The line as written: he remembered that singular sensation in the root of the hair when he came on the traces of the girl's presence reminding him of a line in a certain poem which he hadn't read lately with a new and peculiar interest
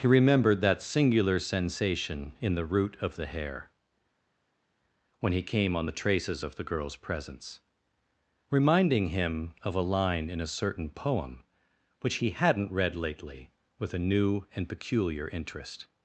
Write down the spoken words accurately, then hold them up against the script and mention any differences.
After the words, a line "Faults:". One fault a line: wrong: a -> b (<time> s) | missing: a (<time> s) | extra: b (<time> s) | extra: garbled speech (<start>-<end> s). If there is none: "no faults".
he remembered that singular sensation in the root of the hair when he came on the traces of the girl's presence reminding him of a line in a certain poem which he hadn't read lately with a new and peculiar interest
Faults:
no faults